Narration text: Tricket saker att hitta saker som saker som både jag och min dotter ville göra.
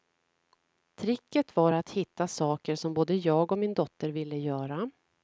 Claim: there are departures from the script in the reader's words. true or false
true